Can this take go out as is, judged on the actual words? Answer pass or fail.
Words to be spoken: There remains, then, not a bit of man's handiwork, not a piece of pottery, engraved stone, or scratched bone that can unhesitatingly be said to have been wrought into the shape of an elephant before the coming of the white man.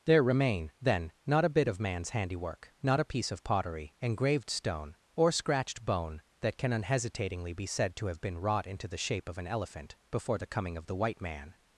fail